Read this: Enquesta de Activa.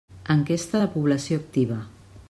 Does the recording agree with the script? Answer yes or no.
no